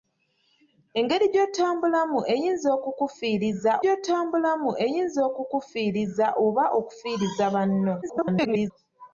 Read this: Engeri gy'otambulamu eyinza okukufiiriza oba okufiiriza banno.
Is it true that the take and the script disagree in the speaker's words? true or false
true